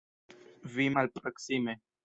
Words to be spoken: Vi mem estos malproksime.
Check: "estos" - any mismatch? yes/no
yes